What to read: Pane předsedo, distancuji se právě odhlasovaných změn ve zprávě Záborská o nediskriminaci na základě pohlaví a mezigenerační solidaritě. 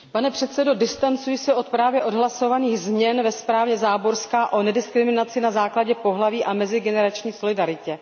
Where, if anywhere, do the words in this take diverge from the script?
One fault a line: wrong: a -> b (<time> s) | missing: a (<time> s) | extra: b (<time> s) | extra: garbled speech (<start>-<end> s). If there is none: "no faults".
extra: od (1.5 s)